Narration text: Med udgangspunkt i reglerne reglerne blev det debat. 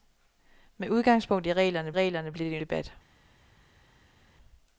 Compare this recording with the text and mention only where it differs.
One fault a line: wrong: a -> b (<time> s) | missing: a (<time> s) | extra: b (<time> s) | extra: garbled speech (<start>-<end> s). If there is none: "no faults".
no faults